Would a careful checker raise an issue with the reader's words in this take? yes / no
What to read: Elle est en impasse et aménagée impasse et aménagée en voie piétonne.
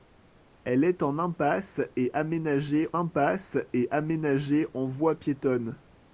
no